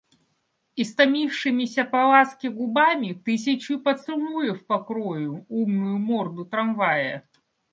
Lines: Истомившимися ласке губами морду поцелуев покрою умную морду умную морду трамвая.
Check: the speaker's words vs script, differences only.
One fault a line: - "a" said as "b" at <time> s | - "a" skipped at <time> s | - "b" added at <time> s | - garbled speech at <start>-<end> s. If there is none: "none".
- "по" added at 1.8 s
- "морду" said as "тысячью" at 3.1 s
- "умную морду" skipped at 6.4 s